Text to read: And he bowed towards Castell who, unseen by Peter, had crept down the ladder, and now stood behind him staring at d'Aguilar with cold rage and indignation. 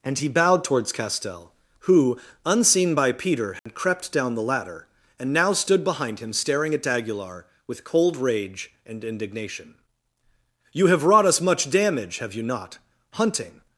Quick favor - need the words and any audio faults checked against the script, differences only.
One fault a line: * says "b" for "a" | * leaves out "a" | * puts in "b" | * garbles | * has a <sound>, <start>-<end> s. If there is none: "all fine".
* has a dropout, 3.6-3.7 s
* puts in "You have wrought us much damage have you not hunting"